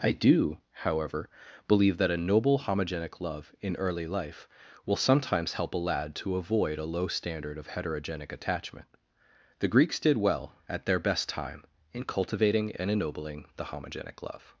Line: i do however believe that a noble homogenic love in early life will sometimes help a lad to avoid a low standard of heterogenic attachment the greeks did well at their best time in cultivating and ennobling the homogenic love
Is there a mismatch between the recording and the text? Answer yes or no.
no